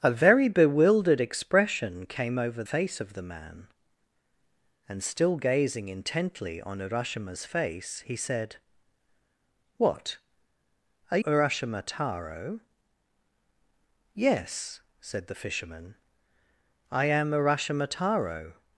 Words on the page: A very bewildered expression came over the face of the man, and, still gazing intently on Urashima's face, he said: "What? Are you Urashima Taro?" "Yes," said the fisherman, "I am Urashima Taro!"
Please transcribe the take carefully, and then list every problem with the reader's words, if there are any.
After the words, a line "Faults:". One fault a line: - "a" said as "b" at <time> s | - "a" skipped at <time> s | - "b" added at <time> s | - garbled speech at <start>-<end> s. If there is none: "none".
A very bewildered expression came over face of the man, and, still gazing intently on Urashima's face, he said: "What? Are Urashima Taro?" "Yes," said the fisherman, "I am Urashima Taro!"
Faults:
- "the" skipped at 2.6 s
- "you" skipped at 11.2 s